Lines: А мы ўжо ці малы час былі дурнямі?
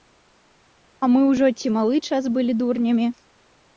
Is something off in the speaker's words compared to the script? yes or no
no